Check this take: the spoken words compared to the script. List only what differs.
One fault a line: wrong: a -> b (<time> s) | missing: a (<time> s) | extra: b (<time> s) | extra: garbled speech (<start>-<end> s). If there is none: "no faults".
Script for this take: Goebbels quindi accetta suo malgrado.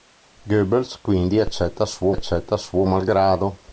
extra: accetta suo (2.1 s)